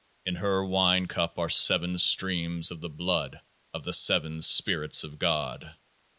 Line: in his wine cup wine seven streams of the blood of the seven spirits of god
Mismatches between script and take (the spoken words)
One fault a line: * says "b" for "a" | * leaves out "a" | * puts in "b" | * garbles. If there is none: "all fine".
* says "her" for "his"
* says "are" for "wine"